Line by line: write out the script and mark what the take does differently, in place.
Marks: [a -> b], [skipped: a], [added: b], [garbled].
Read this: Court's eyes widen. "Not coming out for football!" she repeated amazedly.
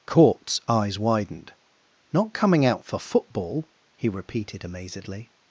Court's eyes [widen. -> widened] "Not coming out for football!" [she -> he] repeated amazedly.